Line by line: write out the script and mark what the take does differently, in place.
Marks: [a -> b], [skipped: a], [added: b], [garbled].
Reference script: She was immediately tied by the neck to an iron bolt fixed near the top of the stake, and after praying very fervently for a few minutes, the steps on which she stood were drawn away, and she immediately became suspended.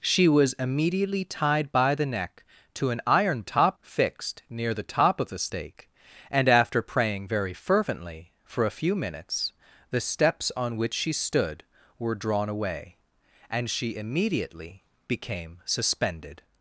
She was immediately tied by the neck to an iron [bolt -> top] fixed near the top of the stake, and after praying very fervently for a few minutes, the steps on which she stood were drawn away, and she immediately became suspended.